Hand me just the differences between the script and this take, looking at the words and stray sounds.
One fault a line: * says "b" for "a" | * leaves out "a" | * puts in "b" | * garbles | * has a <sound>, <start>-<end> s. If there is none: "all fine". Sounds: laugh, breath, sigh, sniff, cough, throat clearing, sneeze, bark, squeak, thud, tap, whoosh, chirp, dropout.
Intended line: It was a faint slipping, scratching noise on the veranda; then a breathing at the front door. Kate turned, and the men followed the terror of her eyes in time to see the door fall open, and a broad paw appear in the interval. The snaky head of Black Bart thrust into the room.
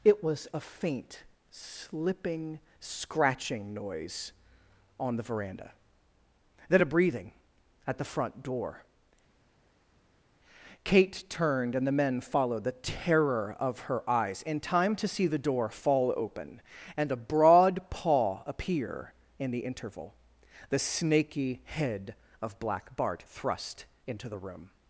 all fine